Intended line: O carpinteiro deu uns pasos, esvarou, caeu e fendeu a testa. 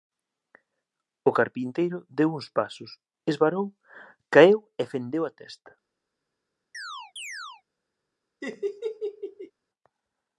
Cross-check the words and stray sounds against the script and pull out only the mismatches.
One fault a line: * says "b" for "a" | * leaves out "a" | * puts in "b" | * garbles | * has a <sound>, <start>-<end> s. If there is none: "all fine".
* has a chirp, 6.7-7.6 s
* has a laugh, 8.4-9.5 s